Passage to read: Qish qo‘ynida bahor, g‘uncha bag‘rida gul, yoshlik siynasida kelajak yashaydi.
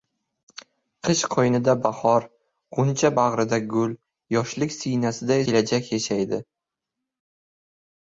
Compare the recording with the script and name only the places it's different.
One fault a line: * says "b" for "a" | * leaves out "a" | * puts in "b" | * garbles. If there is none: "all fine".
all fine